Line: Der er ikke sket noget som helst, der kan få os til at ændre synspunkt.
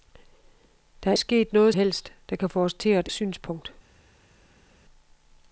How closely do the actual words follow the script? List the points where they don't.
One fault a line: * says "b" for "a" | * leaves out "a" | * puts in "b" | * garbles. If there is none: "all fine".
* leaves out "ikke"
* leaves out "som"
* leaves out "ændre"